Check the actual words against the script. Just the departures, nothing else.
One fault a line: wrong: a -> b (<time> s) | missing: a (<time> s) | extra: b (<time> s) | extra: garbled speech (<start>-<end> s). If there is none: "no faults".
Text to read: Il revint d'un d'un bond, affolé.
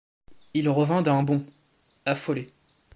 missing: d'un (1.2 s)